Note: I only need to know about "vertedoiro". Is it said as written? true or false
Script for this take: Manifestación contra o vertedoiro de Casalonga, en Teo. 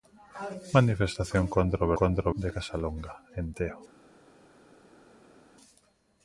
false